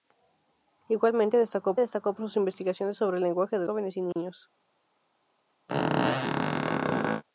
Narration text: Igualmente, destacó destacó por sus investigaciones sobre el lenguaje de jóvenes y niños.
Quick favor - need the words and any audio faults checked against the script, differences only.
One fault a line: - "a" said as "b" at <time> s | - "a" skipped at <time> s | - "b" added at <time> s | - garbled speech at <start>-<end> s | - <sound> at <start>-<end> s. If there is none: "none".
- dropout at 4.1-4.2 s
- squeak at 5.7-7.2 s